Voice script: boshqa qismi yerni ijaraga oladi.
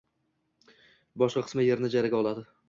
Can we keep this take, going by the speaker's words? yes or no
yes